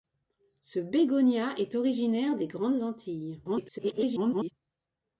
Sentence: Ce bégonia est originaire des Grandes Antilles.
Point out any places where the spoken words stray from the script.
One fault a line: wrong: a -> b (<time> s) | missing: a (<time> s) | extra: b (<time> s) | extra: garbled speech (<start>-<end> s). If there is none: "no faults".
extra: garbled speech (3.4-4.5 s)